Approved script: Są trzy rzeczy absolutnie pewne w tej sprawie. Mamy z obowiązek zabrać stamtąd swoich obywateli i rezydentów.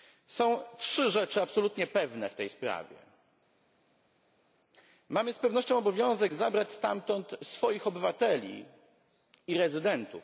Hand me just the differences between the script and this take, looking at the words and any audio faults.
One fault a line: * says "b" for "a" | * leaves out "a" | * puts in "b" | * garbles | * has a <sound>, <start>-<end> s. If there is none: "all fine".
* puts in "pewnością"